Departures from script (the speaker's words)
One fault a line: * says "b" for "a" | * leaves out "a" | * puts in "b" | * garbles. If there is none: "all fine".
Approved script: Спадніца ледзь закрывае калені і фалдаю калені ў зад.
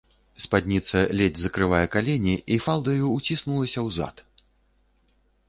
* says "ўціснулася" for "калені"